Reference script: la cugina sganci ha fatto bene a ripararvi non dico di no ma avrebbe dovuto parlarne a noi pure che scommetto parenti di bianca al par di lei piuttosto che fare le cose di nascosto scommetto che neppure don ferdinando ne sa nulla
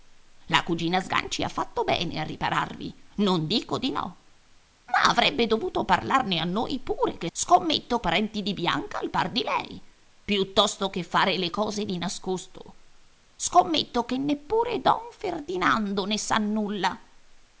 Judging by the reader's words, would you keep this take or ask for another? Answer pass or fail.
pass